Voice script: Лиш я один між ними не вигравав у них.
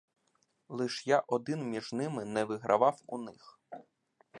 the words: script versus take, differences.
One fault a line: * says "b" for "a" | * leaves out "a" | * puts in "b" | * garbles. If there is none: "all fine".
all fine